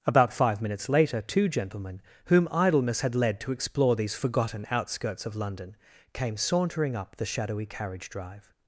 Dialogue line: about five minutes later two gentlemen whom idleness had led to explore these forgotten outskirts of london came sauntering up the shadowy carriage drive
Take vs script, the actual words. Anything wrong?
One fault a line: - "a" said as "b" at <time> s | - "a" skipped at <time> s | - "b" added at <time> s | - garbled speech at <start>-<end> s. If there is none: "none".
none